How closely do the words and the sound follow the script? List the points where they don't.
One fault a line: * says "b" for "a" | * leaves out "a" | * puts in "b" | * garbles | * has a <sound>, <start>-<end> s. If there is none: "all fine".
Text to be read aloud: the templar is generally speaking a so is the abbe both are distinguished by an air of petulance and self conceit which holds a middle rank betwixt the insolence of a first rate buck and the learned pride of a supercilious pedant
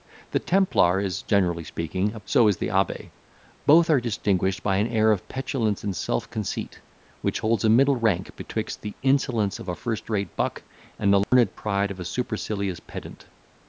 * has a dropout, 11.2-11.3 s